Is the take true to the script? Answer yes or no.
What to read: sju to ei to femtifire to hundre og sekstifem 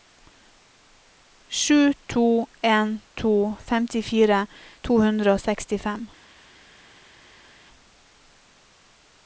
no